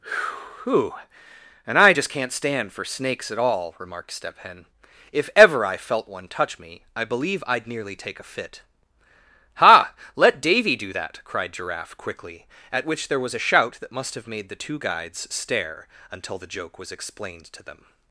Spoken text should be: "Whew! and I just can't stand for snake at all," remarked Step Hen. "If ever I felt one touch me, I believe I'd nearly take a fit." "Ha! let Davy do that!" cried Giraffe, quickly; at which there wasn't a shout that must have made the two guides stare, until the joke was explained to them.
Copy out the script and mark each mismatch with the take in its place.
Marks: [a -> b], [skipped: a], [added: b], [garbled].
"Whew! and I just can't stand for [snake -> snakes] at all," remarked Step Hen. "If ever I felt one touch me, I believe I'd nearly take a fit." "Ha! let Davy do that!" cried Giraffe, quickly; at which there [wasn't -> was] a shout that must have made the two guides stare, until the joke was explained to them.